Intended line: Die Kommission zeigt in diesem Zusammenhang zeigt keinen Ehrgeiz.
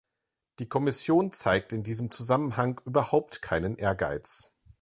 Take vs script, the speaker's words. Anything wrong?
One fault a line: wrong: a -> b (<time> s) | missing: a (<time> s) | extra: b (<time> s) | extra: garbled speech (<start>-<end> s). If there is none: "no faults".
wrong: zeigt -> überhaupt (2.9 s)